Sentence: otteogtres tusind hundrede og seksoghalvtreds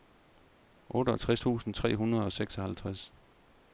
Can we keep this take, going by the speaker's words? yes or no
no